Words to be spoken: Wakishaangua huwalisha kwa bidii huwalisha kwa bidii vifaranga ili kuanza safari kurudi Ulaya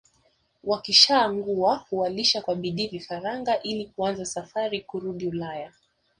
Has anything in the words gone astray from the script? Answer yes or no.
yes